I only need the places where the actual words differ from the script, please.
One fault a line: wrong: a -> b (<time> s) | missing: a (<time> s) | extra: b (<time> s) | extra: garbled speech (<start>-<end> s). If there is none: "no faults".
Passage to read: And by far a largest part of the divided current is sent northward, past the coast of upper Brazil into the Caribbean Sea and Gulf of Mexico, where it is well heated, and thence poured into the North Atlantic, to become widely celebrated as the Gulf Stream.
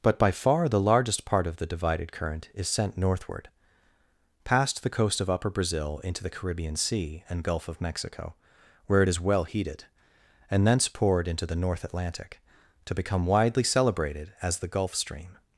wrong: And -> But (0.0 s)
wrong: a -> the (0.7 s)